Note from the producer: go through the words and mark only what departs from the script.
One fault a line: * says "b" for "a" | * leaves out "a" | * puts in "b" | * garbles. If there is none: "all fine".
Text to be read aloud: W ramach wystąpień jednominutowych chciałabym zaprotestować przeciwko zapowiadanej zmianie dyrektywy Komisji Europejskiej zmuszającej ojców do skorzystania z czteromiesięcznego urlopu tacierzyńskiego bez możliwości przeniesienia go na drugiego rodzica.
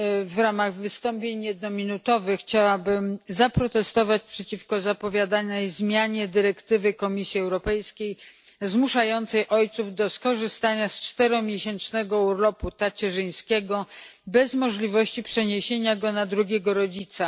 all fine